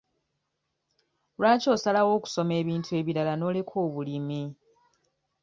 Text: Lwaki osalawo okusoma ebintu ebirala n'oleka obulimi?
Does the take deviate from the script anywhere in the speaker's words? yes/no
no